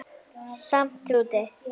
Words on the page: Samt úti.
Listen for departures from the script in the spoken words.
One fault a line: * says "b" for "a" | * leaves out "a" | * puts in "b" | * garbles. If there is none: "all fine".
all fine